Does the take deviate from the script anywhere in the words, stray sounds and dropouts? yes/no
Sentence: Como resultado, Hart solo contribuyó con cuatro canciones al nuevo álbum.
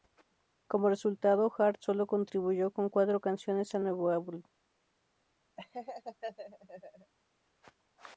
yes